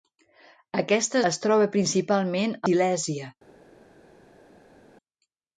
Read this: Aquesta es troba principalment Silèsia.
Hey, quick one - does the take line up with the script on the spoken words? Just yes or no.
yes